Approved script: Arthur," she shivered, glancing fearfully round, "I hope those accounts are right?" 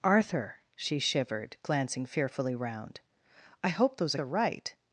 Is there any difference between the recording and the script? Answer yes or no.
yes